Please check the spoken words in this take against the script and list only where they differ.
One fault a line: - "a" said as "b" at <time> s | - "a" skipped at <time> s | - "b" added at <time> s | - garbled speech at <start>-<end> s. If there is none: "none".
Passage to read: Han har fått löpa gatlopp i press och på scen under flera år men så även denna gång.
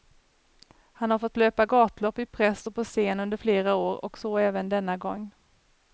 - "men" said as "och" at 4.0 s